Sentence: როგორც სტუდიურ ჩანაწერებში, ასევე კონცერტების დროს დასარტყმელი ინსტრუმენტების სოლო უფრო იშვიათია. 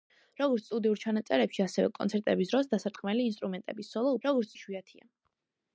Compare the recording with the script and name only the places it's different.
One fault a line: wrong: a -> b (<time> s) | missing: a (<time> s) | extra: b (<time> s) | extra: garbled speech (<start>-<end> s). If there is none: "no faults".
wrong: უფრო -> როგორც (4.2 s)